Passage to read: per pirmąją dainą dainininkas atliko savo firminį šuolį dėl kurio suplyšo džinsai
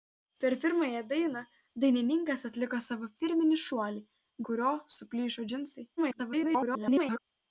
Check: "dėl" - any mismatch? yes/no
yes